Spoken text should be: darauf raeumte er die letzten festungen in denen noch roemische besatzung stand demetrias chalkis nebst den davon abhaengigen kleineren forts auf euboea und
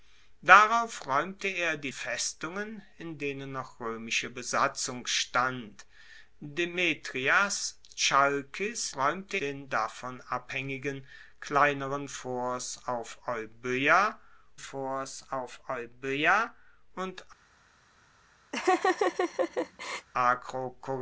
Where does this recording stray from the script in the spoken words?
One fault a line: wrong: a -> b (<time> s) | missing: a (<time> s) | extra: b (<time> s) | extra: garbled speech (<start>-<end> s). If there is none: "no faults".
missing: letzten (1.9 s)
wrong: nebst -> raeumte (8.9 s)
extra: forts auf euboea (14.6 s)